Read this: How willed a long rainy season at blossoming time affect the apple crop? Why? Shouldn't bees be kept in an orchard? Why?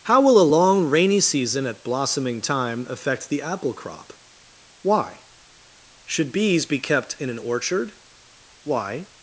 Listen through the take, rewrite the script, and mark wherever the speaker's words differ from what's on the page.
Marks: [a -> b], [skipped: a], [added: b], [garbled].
How [willed -> will] a long rainy season at blossoming time affect the apple crop? Why? [Shouldn't -> Should] bees be kept in an orchard? Why?